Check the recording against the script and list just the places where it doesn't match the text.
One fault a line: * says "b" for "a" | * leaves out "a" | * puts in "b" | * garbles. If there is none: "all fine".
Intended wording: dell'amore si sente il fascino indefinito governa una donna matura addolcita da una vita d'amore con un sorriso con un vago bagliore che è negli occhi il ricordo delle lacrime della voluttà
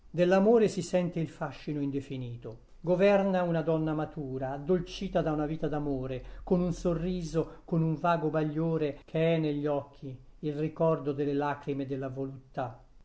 all fine